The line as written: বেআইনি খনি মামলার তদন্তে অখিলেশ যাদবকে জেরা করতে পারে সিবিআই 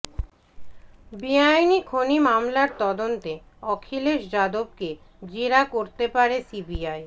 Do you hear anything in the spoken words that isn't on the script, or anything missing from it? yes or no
no